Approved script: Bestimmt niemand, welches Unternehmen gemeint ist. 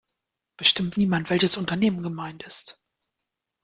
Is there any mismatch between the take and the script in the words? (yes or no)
no